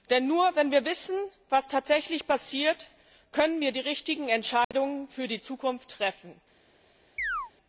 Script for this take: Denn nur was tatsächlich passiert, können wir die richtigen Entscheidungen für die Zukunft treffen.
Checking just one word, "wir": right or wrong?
right